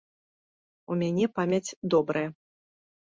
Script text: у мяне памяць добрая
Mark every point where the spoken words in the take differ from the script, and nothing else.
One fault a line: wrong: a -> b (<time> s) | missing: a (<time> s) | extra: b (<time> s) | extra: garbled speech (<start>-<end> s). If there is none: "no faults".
no faults